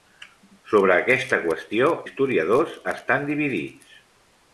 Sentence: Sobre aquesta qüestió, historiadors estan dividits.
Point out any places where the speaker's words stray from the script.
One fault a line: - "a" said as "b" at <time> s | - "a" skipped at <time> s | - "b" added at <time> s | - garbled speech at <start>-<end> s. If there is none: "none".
none